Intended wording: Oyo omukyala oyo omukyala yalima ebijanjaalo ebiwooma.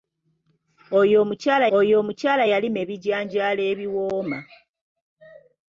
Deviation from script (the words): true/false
false